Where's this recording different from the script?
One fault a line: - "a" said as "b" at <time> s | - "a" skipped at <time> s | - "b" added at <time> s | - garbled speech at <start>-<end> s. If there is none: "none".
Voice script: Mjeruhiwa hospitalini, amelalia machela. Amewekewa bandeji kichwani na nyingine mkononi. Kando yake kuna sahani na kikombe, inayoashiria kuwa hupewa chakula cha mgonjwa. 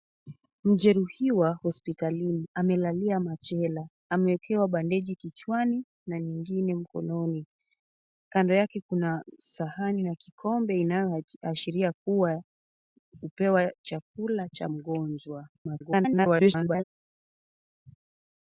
- garbled speech at 15.5-16.8 s